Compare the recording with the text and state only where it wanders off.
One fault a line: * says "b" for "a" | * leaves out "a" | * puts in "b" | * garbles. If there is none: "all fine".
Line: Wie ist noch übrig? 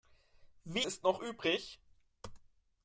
all fine